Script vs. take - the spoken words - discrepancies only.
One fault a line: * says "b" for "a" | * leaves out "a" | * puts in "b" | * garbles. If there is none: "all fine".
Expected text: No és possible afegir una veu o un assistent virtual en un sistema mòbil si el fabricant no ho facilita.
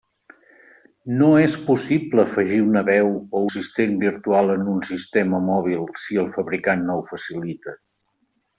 * leaves out "un"